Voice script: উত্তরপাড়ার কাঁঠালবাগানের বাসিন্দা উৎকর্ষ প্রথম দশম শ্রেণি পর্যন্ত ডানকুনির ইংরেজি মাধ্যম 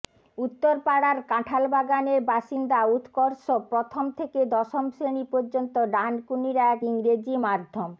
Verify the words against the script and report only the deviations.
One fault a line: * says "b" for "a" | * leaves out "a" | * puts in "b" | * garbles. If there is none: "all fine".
* puts in "থেকে"
* puts in "এক"